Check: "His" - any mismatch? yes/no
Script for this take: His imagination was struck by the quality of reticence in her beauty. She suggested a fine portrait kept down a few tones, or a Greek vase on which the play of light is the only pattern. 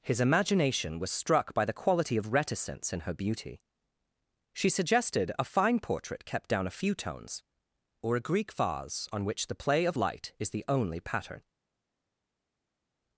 no